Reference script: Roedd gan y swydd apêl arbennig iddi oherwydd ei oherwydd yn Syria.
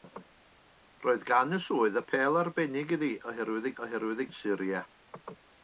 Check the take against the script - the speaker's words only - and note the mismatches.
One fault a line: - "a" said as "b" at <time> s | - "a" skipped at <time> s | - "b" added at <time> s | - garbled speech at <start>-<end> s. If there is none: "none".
none